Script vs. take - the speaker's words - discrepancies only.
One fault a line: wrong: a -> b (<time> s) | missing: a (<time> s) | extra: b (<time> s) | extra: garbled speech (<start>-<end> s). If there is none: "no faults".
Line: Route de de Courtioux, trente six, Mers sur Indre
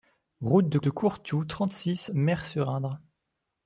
no faults